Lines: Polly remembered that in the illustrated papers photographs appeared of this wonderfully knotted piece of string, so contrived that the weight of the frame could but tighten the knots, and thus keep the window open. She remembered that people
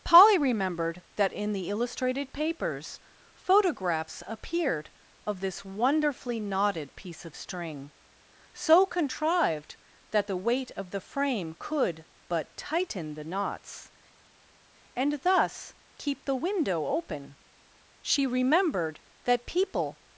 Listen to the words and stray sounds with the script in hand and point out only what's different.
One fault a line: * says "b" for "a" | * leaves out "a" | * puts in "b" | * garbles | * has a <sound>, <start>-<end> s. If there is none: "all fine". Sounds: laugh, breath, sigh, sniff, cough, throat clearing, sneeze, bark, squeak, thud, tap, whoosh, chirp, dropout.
all fine